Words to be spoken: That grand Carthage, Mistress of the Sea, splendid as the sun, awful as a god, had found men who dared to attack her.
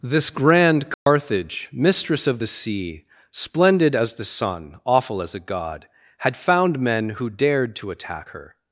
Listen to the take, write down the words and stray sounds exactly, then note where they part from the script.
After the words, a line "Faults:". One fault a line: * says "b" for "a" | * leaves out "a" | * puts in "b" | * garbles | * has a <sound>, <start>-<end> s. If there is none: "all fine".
This grand Carthage, Mistress of the Sea, splendid as the sun, awful as a god, had found men who dared to attack her.
Faults:
* says "This" for "That"
* has a dropout, 0.9-1.1 s